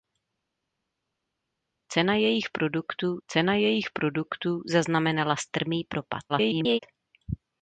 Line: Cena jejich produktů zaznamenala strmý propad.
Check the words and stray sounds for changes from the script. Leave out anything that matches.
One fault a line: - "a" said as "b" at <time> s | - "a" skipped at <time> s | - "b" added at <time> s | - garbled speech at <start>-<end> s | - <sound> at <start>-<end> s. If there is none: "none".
- "cena jejich produktů" added at 3.3 s
- garbled speech at 6.3-6.8 s